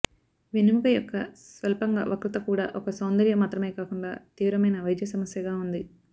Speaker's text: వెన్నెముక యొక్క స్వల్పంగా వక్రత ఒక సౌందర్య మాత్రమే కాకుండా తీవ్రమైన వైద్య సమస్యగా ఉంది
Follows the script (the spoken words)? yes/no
no